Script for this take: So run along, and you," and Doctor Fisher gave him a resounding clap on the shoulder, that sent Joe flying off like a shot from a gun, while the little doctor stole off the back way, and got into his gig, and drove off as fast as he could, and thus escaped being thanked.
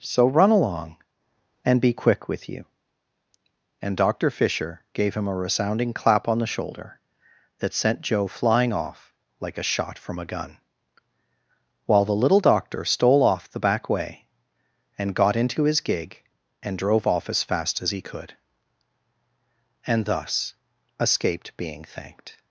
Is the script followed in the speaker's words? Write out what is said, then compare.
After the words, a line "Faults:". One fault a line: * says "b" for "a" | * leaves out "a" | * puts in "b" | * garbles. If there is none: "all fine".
So run along, and be quick with you," and Doctor Fisher gave him a resounding clap on the shoulder, that sent Joe flying off like a shot from a gun, while the little doctor stole off the back way, and got into his gig, and drove off as fast as he could, and thus escaped being thanked.
Faults:
* puts in "be quick with"